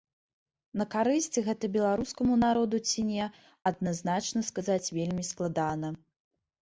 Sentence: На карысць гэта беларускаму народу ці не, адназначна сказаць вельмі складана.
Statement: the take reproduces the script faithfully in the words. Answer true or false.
true